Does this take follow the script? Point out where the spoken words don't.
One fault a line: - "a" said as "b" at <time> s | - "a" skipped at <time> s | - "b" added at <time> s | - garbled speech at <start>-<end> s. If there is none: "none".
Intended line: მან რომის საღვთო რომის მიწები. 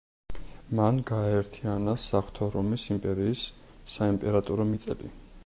- "რომის" said as "გააერთიანა" at 1.1 s
- "იმპერიის საიმპერატორო" added at 3.0 s